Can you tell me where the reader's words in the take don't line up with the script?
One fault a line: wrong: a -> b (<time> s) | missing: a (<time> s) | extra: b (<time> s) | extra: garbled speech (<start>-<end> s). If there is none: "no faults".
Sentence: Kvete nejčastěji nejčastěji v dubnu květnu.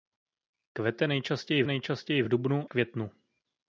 no faults